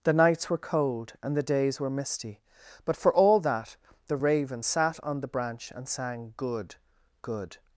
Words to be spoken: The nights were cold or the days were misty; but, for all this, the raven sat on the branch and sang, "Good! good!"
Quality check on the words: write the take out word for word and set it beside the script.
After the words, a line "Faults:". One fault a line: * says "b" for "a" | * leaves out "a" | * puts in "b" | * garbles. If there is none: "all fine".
The nights were cold and the days were misty; but, for all that, the raven sat on the branch and sang, "Good! good!"
Faults:
* says "and" for "or"
* says "that" for "this"